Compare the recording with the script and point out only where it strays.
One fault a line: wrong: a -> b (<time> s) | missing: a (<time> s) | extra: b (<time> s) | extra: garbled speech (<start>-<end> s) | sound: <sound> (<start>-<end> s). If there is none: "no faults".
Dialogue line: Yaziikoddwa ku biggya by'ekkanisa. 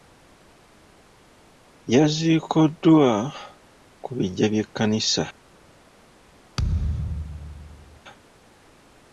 sound: thud (6.6-8.0 s)